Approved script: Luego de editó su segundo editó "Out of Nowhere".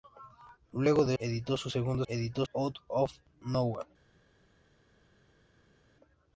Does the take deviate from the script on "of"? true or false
false